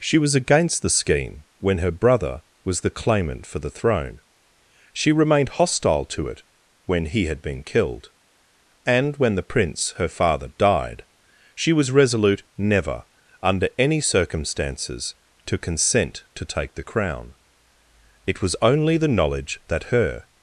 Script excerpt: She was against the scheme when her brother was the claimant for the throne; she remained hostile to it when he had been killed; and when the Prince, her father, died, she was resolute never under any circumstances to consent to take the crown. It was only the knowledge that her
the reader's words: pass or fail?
pass